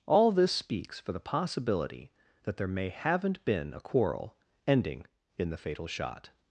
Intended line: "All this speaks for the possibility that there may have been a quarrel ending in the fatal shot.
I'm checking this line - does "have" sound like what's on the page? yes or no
no